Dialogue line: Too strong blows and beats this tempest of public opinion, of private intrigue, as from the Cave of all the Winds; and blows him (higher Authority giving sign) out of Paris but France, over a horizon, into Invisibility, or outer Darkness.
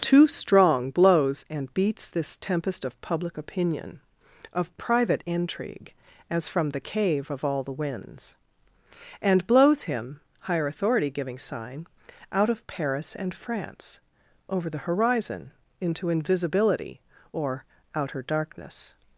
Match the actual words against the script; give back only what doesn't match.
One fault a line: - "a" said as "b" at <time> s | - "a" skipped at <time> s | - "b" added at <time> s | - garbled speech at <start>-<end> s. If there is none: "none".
- "but" said as "and" at 13.1 s
- "a" said as "the" at 14.7 s